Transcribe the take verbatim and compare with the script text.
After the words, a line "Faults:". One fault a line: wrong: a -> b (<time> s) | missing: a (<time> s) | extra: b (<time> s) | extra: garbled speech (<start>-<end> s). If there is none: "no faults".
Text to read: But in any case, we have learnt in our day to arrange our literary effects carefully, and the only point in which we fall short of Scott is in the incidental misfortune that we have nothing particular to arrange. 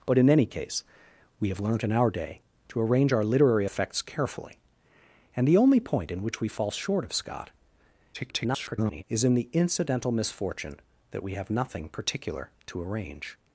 But in any case, we have learnt in our day to arrange our literary effects carefully, and the only point in which we fall short of Scott [garbled] is in the incidental misfortune that we have nothing particular to arrange.
Faults:
extra: garbled speech (8.1-9.0 s)